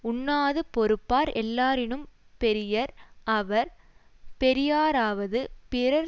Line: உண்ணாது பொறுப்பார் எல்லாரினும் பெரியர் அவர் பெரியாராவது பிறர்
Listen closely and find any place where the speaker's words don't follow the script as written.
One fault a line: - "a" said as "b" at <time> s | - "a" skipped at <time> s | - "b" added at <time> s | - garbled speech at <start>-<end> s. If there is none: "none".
none